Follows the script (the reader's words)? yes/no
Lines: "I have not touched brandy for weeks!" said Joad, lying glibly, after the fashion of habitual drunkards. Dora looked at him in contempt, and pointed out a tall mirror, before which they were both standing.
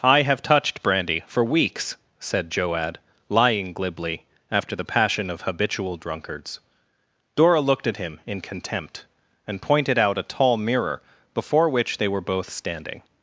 no